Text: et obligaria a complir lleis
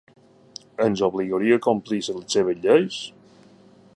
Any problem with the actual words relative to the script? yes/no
yes